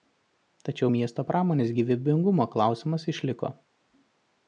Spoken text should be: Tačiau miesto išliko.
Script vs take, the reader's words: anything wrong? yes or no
yes